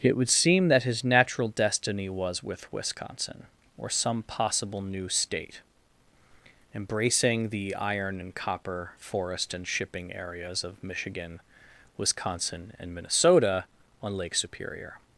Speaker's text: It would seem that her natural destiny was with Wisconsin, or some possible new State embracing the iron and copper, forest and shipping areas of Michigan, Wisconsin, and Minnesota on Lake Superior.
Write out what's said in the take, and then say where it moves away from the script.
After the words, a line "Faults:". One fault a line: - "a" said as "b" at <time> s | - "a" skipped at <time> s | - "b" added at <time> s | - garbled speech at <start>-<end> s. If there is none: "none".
It would seem that his natural destiny was with Wisconsin, or some possible new State embracing the iron and copper, forest and shipping areas of Michigan, Wisconsin, and Minnesota on Lake Superior.
Faults:
- "her" said as "his" at 0.8 s